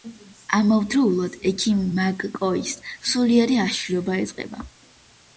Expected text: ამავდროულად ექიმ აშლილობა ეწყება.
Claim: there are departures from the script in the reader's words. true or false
true